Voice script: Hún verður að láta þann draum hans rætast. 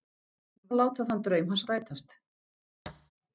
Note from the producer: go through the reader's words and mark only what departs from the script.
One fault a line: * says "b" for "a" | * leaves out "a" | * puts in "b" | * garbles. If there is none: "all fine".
* leaves out "verður"